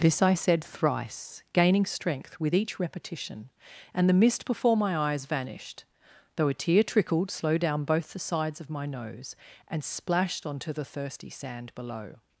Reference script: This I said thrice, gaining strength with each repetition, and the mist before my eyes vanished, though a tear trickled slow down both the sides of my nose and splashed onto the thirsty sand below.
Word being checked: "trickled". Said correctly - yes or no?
yes